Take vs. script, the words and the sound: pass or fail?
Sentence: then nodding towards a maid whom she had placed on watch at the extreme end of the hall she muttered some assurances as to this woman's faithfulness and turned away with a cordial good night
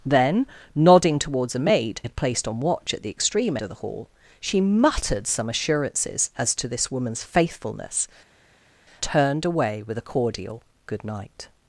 fail